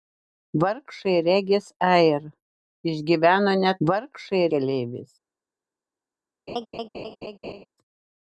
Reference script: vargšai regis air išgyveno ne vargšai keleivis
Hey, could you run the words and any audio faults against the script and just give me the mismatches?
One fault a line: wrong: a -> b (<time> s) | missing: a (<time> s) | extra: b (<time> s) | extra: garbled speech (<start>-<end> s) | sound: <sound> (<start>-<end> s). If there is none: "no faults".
sound: laugh (6.5-7.7 s)